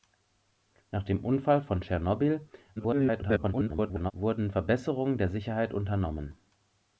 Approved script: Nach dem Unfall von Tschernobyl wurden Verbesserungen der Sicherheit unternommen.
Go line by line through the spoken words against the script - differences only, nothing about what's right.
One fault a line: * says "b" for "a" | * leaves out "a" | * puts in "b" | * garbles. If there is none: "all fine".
* garbles